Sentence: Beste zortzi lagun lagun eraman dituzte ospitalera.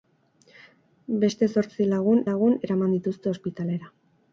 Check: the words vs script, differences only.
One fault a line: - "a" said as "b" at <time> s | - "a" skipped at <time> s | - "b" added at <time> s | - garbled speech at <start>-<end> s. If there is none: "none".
none